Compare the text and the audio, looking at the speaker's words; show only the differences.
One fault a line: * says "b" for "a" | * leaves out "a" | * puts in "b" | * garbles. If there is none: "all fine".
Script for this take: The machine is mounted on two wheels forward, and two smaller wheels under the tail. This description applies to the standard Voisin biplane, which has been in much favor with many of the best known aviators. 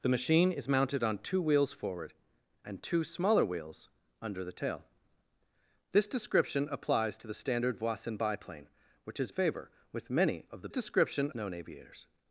* leaves out "been in much"
* says "description" for "best"